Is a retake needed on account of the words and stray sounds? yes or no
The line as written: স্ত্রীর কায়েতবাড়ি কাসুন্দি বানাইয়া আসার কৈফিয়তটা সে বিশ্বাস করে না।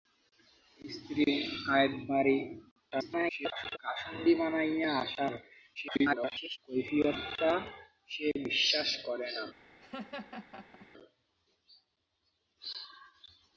yes